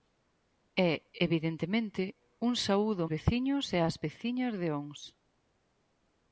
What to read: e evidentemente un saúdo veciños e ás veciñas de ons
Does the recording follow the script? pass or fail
pass